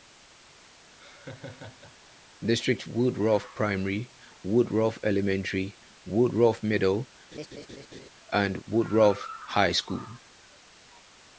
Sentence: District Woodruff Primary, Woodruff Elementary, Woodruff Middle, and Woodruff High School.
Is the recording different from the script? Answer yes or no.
no